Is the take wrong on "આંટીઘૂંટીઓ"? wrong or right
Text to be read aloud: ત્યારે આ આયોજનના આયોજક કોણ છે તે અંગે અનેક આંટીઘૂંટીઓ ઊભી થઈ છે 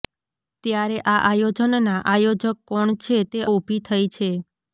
wrong